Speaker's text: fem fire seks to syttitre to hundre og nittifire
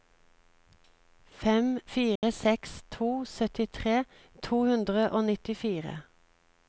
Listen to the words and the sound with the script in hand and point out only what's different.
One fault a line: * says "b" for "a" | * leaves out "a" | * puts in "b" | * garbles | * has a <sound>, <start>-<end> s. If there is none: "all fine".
* has a dropout, 2.2-2.2 s